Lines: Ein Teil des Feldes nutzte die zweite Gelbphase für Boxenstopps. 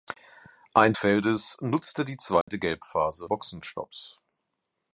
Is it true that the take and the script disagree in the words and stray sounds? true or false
true